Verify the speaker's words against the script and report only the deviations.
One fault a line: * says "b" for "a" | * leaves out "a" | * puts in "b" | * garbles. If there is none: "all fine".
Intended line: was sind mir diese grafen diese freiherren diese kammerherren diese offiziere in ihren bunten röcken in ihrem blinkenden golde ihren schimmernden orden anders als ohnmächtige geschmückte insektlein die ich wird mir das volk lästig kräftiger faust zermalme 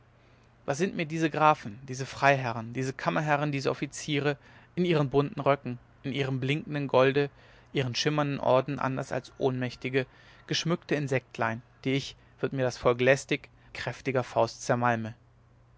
all fine